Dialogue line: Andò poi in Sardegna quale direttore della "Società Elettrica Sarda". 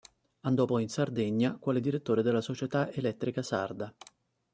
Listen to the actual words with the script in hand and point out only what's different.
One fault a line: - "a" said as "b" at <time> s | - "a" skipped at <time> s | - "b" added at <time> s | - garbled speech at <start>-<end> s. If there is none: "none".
none